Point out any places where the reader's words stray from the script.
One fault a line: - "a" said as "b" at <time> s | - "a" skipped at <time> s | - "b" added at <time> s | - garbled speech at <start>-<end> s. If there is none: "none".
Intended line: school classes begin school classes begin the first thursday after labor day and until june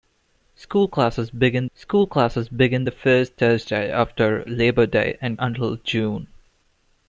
none